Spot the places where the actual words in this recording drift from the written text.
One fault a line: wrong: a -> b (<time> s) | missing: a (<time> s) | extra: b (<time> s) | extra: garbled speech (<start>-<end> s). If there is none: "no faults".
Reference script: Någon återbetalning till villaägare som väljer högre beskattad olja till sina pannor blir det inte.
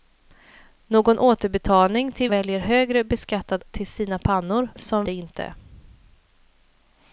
missing: villaägare som (2.3 s)
missing: olja (3.6 s)
wrong: blir -> som (4.8 s)